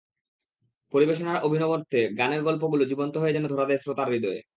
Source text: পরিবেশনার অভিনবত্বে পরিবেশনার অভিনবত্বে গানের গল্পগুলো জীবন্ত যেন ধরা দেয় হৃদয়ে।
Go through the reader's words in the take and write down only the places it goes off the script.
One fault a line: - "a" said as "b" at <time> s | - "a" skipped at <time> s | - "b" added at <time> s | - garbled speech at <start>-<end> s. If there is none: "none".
- "পরিবেশনার অভিনবত্বে" skipped at 2.0 s
- "হয়ে" added at 3.2 s
- "শ্রোতার" added at 3.8 s